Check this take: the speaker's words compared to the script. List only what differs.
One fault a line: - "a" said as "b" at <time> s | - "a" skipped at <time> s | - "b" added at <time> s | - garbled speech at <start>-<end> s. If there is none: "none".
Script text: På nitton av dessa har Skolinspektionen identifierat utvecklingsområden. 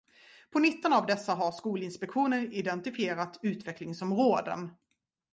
none